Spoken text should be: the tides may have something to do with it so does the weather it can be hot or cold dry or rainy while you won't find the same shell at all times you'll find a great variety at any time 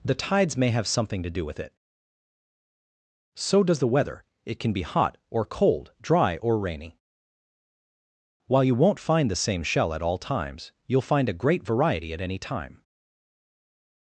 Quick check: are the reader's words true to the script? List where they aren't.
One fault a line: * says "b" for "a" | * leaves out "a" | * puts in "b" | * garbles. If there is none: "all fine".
all fine